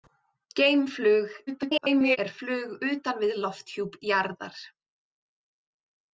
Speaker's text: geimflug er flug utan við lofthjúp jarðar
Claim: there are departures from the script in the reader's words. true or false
true